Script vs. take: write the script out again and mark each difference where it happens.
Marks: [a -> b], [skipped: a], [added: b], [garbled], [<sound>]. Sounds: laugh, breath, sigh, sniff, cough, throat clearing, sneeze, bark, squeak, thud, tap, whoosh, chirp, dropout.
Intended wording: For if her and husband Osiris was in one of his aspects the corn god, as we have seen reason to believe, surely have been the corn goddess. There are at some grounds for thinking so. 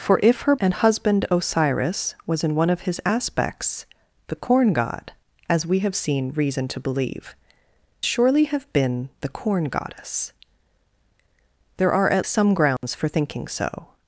For if her and husband Osiris was in one of his aspects the corn god, as we have seen reason to believe, surely have been the corn goddess. There are at some grounds [dropout] for thinking so.